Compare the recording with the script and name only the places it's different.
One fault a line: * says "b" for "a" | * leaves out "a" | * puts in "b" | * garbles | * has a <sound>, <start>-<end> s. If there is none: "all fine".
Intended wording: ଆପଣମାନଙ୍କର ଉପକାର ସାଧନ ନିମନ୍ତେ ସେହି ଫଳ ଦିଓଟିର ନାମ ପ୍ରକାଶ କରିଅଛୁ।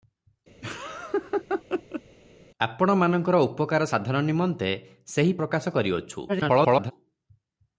* has a laugh, 0.6-2.0 s
* leaves out "ଫଳ ଦିଓଟିର ନାମ"
* garbles